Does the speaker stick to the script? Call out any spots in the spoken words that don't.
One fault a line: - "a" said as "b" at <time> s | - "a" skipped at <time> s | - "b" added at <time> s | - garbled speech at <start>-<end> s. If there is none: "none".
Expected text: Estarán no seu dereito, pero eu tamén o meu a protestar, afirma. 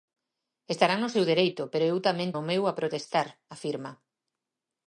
none